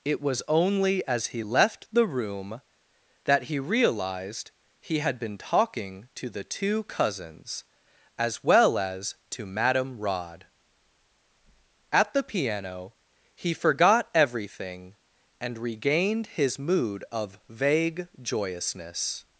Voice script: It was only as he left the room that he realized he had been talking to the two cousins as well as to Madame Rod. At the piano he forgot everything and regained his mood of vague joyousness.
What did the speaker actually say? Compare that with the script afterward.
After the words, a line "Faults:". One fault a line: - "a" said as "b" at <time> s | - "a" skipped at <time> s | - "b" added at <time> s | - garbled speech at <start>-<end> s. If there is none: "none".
It was only as he left the room that he realized he had been talking to the two cousins as well as to Madame Rod. At the piano he forgot everything and regained his mood of vague joyousness.
Faults:
none